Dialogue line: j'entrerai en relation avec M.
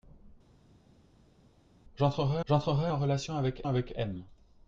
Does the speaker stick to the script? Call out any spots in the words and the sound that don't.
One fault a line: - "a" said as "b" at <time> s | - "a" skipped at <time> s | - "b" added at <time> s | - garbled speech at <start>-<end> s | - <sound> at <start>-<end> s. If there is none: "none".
- "j'entrerai" added at 2.4 s
- "avec" added at 3.7 s